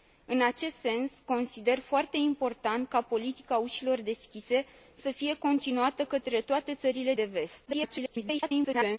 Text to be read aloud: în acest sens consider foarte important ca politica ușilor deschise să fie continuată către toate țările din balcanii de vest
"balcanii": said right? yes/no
no